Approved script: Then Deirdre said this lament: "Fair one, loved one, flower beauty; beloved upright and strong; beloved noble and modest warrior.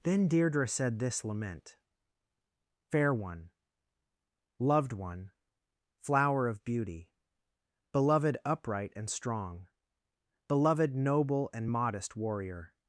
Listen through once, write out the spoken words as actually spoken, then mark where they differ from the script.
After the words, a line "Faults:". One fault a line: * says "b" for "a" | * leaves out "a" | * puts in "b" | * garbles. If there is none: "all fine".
Then Deirdre said this lament: "Fair one, loved one, flower of beauty; beloved upright and strong; beloved noble and modest warrior.
Faults:
* puts in "of"